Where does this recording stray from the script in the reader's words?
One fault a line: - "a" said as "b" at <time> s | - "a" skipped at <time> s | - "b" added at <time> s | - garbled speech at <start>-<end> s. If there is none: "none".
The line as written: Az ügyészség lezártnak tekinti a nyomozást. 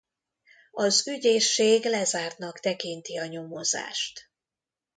none